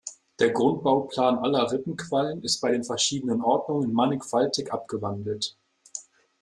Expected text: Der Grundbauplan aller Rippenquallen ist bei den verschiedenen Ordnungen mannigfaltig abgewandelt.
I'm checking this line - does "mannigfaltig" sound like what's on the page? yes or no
yes